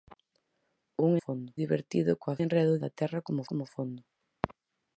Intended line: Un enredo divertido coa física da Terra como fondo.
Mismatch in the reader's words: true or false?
true